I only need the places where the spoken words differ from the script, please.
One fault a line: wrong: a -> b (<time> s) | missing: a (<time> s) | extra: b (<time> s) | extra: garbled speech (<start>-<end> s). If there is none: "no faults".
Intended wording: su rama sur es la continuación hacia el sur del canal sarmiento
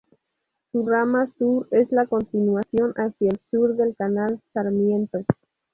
no faults